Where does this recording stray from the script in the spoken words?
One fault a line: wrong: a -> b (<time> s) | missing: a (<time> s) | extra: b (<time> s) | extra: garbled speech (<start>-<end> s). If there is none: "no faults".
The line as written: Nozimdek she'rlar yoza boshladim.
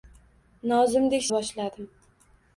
missing: she'rlar yoza (1.3 s)